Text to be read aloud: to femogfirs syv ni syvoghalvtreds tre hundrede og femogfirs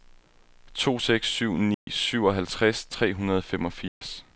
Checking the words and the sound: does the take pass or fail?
fail